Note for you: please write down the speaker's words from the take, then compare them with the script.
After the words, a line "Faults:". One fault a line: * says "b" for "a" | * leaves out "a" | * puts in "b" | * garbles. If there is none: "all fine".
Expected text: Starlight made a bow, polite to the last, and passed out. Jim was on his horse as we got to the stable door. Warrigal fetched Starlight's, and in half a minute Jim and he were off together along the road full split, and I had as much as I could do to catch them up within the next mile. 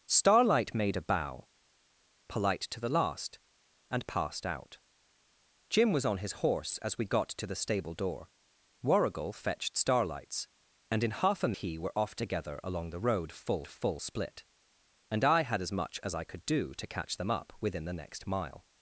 Starlight made a bow, polite to the last, and passed out. Jim was on his horse as we got to the stable door. Warrigal fetched Starlight's, and in half a he were off together along the road full full split, and I had as much as I could do to catch them up within the next mile.
Faults:
* leaves out "minute Jim and"
* puts in "full"